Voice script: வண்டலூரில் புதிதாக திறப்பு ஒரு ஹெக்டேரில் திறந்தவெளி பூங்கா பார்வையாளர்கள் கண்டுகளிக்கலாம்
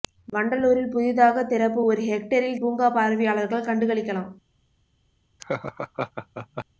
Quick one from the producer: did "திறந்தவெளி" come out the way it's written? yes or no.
no